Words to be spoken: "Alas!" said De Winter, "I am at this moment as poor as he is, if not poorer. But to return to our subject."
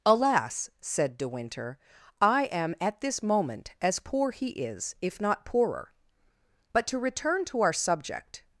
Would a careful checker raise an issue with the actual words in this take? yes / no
yes